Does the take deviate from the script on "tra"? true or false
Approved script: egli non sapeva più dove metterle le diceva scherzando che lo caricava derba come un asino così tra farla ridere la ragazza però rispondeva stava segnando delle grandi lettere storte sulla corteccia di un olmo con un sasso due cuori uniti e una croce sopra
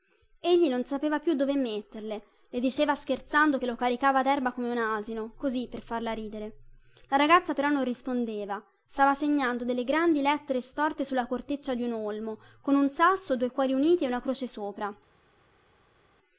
true